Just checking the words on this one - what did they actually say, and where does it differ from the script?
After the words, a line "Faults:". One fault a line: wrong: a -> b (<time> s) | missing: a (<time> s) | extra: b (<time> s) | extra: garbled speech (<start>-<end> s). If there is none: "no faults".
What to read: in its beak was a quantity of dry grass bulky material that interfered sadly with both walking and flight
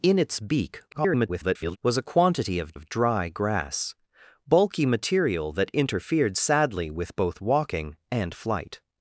in its beak [garbled] was a quantity of of dry grass bulky material that interfered sadly with both walking and flight
Faults:
extra: garbled speech (0.9-1.8 s)
extra: of (2.7 s)